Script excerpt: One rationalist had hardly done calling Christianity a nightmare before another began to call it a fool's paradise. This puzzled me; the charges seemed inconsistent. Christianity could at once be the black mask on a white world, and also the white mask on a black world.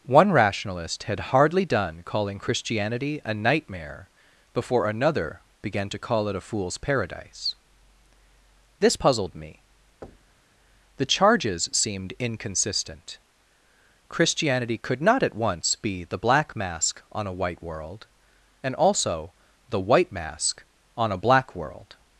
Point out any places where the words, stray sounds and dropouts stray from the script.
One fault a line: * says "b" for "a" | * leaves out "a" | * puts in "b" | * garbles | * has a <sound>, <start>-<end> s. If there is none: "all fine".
* has a thud, 10.0-10.5 s
* puts in "not"